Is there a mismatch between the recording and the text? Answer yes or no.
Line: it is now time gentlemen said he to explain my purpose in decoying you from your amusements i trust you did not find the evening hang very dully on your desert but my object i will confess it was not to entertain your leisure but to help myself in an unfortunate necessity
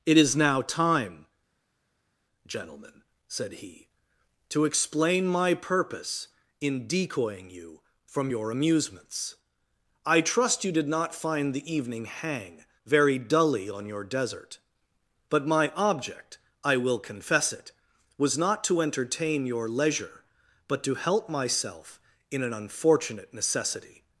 no